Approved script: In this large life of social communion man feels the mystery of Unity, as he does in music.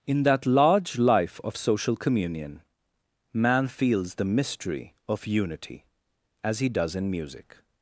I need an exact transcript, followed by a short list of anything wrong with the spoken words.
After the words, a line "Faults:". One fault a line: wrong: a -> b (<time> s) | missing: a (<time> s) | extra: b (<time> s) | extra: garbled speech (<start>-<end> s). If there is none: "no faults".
In that large life of social communion man feels the mystery of Unity, as he does in music.
Faults:
wrong: this -> that (0.2 s)